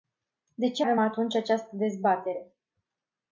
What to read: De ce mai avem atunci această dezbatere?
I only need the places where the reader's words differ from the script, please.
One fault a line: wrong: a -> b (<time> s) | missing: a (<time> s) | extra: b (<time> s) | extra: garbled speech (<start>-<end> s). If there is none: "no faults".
missing: mai (0.8 s)